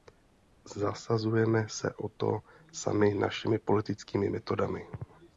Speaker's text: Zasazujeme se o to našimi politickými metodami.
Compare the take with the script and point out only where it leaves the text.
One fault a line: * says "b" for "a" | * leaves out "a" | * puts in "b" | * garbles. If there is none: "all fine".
* puts in "sami"